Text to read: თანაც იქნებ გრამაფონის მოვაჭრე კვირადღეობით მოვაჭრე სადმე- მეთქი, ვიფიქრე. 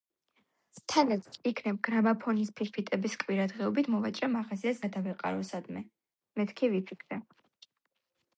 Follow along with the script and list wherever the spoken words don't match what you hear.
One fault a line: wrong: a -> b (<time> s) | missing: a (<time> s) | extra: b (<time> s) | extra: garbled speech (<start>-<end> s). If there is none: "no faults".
wrong: მოვაჭრე -> ფირფიტების (2.6 s)
extra: მაღაზიას გადავეყარო (4.4 s)